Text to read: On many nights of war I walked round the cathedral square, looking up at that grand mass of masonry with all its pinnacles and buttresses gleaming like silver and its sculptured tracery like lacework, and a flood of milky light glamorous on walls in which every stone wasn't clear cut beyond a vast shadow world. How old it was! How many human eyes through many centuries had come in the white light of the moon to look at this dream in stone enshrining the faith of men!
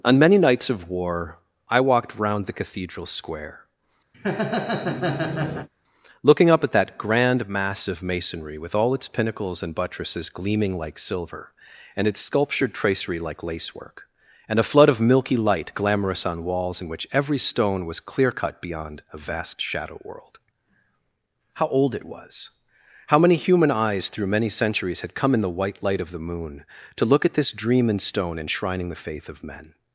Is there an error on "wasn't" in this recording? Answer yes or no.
yes